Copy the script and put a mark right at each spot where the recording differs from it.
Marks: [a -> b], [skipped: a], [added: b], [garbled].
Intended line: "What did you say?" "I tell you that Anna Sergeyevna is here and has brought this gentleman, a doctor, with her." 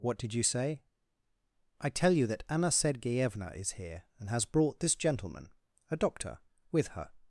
"What did you say?" "I tell you that Anna Sergeyevna is here and has brought this gentleman, a doctor, with her."